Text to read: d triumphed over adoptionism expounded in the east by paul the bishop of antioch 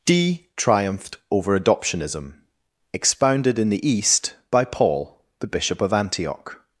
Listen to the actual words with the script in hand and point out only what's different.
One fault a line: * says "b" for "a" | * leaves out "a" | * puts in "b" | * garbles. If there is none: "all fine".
all fine